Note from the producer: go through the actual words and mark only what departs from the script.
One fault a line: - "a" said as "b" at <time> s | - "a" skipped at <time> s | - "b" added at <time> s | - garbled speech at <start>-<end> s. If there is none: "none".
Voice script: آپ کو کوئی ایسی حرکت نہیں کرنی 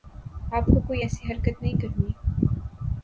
none